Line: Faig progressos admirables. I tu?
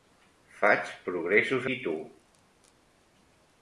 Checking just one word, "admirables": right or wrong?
wrong